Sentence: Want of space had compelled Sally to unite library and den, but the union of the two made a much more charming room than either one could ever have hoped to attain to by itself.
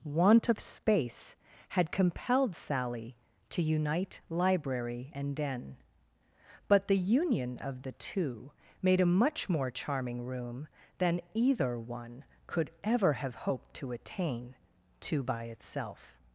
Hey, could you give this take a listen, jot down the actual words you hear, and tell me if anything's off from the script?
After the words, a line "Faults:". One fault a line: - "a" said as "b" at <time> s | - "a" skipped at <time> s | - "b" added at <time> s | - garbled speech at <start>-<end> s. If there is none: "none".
Want of space had compelled Sally to unite library and den, but the union of the two made a much more charming room than either one could ever have hoped to attain to by itself.
Faults:
none